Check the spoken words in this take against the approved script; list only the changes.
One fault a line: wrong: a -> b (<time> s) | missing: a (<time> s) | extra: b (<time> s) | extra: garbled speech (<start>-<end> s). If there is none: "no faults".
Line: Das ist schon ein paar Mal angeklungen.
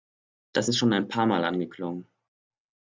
no faults